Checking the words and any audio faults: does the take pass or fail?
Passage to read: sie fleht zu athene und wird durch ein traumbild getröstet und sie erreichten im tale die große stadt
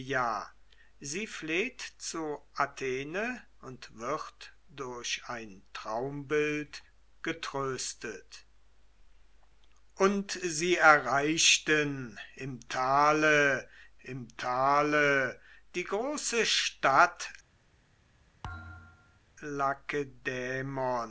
fail